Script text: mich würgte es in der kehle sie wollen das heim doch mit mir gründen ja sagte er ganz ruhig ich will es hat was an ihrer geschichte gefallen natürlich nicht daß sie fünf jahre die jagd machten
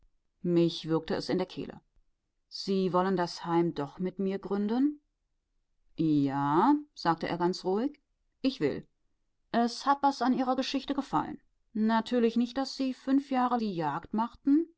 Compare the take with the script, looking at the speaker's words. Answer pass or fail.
pass